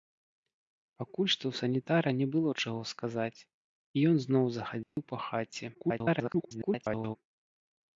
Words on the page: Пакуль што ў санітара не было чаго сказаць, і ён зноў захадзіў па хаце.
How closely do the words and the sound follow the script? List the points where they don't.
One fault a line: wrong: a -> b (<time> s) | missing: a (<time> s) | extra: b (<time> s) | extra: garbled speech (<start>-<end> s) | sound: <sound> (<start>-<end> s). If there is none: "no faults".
sound: dropout (4.8-5.0 s)
extra: garbled speech (5.7-7.2 s)